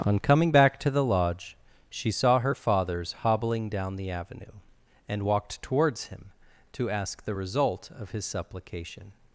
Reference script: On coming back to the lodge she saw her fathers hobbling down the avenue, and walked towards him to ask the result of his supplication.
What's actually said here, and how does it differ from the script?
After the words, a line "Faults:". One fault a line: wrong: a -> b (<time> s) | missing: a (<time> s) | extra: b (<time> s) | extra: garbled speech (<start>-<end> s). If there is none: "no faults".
On coming back to the lodge she saw her fathers hobbling down the avenue, and walked towards him to ask the result of his supplication.
Faults:
no faults